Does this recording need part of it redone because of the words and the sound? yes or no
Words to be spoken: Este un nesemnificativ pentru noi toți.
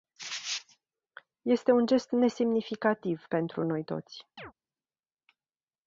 yes